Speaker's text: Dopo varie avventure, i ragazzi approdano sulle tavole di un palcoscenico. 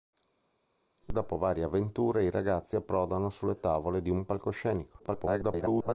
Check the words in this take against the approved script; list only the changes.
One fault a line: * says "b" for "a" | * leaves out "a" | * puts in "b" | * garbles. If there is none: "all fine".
* garbles